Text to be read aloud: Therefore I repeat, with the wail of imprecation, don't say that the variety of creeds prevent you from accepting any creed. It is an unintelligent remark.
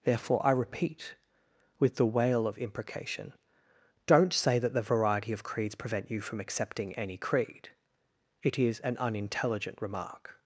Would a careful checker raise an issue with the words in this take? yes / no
no